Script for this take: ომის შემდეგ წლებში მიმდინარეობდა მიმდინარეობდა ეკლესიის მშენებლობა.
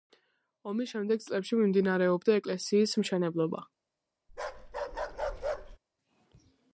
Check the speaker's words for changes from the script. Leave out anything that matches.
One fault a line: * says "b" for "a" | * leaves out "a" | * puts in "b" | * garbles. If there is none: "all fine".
* leaves out "მიმდინარეობდა"